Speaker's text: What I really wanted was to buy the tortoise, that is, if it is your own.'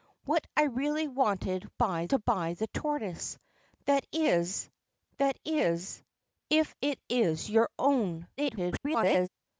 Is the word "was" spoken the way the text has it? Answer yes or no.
no